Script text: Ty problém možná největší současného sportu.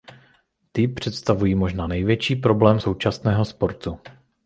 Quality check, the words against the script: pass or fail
fail